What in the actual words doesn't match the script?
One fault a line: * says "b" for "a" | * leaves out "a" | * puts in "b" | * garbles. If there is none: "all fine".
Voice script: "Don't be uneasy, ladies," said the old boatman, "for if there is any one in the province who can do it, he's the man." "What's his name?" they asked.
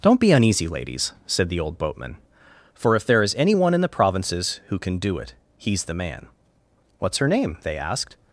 * says "provinces" for "province"
* says "her" for "his"